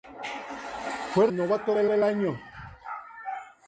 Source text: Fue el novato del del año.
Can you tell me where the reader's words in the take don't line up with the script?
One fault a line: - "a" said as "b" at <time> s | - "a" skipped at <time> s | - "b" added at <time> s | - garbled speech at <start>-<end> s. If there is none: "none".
none